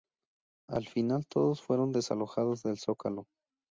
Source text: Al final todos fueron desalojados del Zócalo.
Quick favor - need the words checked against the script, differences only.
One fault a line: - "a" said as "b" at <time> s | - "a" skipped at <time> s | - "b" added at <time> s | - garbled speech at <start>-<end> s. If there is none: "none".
none